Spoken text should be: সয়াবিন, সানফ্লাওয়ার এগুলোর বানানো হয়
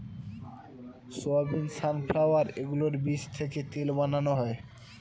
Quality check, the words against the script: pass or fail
fail